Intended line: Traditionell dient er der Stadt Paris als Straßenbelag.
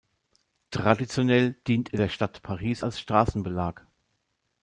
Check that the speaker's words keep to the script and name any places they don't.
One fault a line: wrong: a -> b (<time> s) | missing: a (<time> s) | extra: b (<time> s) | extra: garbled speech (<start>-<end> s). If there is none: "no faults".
no faults